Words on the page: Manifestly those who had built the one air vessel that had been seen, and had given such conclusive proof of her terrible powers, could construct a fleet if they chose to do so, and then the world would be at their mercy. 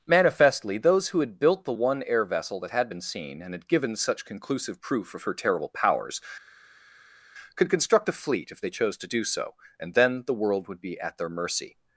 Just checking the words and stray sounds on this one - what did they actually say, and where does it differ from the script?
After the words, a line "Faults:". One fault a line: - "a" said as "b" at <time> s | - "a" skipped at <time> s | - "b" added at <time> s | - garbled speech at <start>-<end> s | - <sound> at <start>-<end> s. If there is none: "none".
Manifestly those who had built the one air vessel that had been seen, and had given such conclusive proof of her terrible powers, could construct a fleet if they chose to do so, and then the world would be at their mercy.
Faults:
none